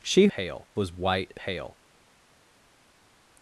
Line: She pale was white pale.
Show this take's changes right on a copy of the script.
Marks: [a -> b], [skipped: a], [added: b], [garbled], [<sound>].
She pale was white pale.